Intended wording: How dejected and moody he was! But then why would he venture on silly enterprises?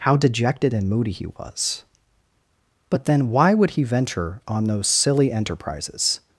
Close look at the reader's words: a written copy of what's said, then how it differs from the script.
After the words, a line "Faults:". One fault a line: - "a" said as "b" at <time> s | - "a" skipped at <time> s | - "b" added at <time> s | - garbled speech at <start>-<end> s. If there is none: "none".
How dejected and moody he was! But then why would he venture on those silly enterprises?
Faults:
- "those" added at 4.7 s